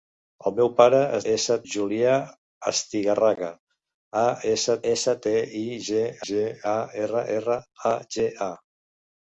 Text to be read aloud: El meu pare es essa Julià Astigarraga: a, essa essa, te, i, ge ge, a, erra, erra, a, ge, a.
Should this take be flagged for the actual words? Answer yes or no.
no